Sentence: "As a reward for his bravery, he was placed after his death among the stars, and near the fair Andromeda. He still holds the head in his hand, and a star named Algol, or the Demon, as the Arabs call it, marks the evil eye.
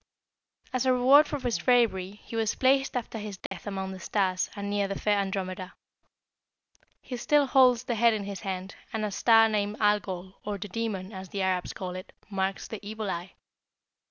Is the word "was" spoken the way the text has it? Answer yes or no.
yes